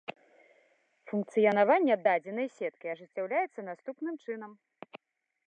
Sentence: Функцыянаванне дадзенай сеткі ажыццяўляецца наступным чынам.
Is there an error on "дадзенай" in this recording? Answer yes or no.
no